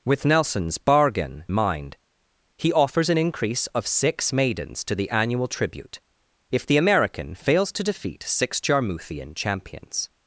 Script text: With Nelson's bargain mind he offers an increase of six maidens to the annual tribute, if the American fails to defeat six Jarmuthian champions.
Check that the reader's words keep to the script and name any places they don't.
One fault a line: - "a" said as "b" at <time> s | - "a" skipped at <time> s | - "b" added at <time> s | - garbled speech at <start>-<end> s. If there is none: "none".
none